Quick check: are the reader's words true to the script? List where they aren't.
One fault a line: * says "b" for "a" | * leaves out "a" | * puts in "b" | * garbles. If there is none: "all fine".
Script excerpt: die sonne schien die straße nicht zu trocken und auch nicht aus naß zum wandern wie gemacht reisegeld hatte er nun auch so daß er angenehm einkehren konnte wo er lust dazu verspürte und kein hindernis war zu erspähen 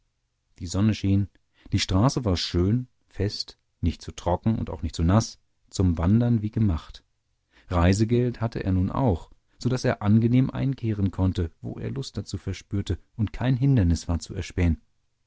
* puts in "war schön fest"
* says "zu" for "aus"